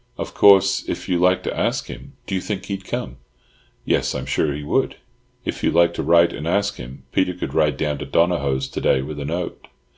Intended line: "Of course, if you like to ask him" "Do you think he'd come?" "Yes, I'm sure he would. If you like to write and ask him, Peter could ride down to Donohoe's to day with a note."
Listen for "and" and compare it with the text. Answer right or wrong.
right